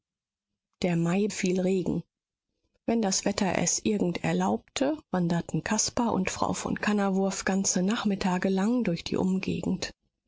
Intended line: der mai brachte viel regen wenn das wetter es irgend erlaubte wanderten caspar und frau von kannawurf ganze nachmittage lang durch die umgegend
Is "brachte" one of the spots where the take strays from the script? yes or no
yes